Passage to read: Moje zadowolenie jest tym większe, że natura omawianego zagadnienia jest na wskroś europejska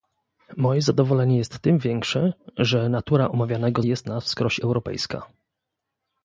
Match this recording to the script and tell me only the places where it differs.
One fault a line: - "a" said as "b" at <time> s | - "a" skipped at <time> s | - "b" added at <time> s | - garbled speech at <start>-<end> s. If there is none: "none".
- "zagadnienia" skipped at 3.8 s